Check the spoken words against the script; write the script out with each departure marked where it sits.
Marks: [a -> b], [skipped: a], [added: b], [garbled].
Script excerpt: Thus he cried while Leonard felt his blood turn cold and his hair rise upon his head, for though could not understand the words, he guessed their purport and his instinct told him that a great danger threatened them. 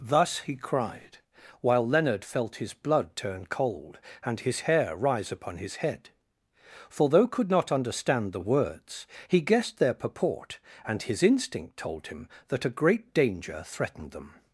Thus he cried while Leonard felt his blood turn cold and his hair rise upon his head, for though could not understand the words, he guessed their purport and his instinct told him that a great danger threatened them.